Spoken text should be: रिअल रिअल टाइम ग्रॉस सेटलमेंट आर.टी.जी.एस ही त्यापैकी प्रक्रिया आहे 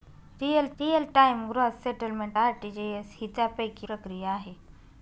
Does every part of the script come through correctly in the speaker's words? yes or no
yes